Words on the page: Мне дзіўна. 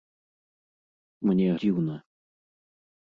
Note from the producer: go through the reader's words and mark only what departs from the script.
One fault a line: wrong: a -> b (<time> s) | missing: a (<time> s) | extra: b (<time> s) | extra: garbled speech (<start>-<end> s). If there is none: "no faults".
no faults